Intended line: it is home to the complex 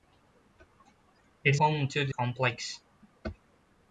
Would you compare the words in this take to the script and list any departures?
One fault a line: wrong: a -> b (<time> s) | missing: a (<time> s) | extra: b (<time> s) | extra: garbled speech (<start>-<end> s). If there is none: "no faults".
no faults